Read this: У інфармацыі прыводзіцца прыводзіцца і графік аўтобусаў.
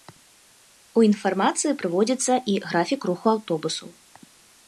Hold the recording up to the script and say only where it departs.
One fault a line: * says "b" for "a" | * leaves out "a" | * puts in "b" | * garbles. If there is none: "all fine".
* leaves out "прыводзіцца"
* puts in "руху"